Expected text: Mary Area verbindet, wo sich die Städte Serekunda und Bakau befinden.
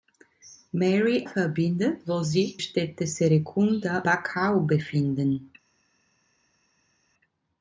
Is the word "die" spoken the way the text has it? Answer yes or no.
no